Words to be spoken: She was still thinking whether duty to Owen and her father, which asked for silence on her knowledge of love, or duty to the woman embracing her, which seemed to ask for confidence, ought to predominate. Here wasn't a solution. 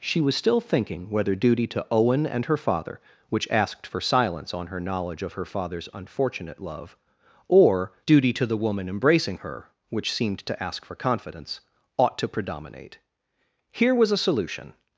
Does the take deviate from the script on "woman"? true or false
false